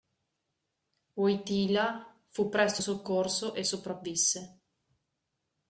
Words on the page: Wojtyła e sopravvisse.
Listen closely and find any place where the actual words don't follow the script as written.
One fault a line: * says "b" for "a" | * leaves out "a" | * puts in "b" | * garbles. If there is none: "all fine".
* puts in "fu presto soccorso"